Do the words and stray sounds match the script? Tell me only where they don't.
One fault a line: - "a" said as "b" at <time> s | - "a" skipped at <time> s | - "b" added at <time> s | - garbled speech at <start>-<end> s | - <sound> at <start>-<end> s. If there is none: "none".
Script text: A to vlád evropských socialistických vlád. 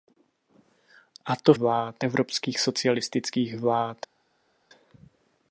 none